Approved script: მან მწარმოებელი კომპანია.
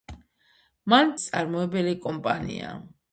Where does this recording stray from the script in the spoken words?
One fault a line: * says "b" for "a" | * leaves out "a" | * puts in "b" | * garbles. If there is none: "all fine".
all fine